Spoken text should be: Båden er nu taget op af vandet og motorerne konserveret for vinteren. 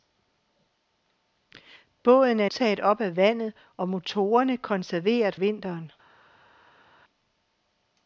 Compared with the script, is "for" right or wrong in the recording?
wrong